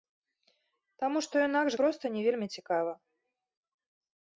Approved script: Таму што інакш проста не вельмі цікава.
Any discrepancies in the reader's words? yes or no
no